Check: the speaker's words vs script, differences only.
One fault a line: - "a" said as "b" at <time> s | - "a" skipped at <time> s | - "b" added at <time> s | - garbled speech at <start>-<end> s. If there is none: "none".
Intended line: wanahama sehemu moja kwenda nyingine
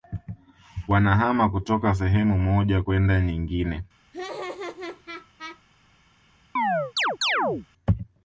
- "kutoka" added at 1.5 s